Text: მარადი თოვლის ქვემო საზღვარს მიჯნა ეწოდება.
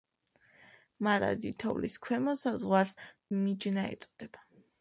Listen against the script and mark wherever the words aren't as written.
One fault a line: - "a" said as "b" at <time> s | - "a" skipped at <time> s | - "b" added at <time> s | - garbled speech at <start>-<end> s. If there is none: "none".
none